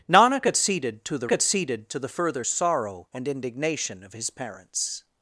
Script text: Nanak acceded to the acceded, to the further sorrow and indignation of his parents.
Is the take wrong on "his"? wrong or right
right